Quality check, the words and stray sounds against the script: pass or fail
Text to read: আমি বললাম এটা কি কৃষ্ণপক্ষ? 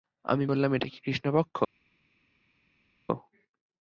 pass